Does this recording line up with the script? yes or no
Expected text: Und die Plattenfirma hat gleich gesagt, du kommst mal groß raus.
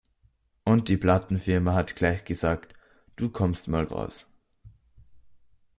no